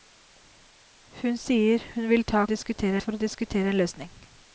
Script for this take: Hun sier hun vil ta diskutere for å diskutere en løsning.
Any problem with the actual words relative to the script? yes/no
no